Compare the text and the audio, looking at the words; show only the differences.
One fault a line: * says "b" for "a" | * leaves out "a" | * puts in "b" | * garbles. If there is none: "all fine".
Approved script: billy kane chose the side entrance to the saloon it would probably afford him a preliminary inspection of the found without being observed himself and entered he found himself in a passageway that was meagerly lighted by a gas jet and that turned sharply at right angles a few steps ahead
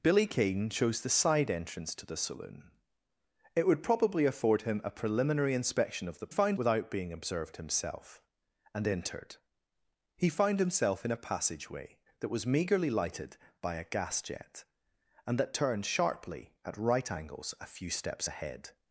all fine